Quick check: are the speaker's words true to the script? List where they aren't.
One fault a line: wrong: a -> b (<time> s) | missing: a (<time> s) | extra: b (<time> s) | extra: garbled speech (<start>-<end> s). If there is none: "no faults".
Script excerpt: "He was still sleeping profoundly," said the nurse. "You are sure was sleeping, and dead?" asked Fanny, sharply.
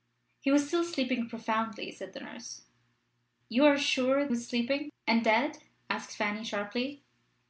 no faults